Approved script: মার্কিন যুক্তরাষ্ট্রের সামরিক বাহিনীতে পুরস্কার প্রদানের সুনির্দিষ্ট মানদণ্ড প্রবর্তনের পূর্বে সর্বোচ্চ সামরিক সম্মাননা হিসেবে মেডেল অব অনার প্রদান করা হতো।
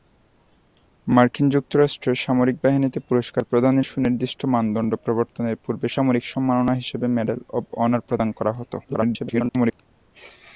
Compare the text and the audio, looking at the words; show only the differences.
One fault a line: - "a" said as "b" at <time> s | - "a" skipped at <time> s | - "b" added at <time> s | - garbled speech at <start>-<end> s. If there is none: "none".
- "সর্বোচ্চ" skipped at 5.9 s
- garbled speech at 8.8-9.8 s